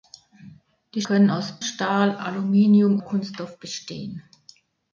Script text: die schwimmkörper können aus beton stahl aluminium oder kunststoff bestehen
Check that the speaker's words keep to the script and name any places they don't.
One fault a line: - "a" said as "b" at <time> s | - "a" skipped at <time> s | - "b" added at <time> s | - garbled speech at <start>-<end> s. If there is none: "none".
- "schwimmkörper" skipped at 1.0 s
- "beton" skipped at 1.6 s
- "oder" skipped at 3.0 s